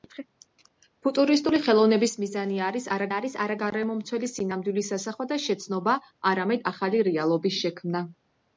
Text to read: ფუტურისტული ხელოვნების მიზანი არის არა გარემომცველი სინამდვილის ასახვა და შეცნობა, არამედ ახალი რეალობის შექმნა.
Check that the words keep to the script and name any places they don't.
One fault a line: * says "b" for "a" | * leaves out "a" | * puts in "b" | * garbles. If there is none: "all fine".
* puts in "არის არა"